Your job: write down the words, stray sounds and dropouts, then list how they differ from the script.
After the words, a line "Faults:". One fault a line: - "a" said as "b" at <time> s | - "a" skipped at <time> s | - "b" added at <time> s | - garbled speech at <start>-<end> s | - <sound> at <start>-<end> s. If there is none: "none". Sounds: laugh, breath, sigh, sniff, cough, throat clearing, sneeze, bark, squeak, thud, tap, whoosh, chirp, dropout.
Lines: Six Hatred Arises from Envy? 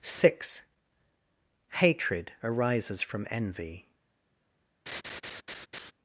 Six Hatred Arises from Envy?
Faults:
- laugh at 4.9-5.9 s